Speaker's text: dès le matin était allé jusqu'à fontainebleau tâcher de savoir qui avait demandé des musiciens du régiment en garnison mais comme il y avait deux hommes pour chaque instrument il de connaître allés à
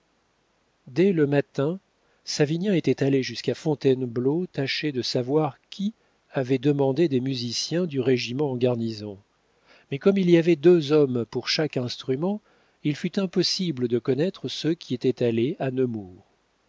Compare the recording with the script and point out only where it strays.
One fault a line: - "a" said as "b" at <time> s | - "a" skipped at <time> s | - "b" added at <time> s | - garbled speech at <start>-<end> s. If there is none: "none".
- "savinien" added at 2.2 s
- "fut impossible" added at 13.0 s
- "ceux qui étaient" added at 14.5 s